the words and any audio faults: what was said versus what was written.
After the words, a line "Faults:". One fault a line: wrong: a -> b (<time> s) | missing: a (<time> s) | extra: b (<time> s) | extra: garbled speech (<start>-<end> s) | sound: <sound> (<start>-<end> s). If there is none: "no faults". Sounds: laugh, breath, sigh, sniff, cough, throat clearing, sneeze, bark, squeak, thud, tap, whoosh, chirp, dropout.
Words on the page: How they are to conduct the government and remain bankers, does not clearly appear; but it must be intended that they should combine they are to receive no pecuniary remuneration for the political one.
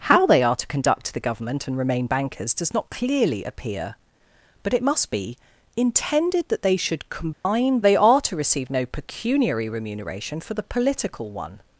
How they are to conduct the government and remain bankers, does not clearly appear; but it must be intended that they should combine they are to receive no pecuniary remuneration for the political one.
Faults:
sound: dropout (7.3-7.5 s)